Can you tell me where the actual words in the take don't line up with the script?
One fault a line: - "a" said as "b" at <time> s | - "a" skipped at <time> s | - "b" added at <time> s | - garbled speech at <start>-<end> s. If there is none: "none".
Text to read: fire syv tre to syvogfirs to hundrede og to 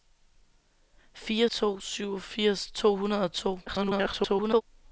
- "syv tre" skipped at 1.5 s
- garbled speech at 3.7-4.6 s